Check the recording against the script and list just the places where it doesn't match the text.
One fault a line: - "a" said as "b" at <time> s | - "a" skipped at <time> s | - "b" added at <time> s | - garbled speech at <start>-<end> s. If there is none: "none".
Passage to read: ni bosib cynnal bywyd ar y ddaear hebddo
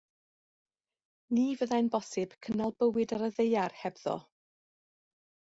- "fyddai'n" added at 1.6 s